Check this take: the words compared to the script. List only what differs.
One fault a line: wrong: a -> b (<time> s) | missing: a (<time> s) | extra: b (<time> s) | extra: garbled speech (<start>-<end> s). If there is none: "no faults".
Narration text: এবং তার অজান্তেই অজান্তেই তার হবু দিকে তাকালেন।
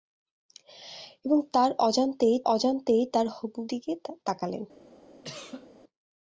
no faults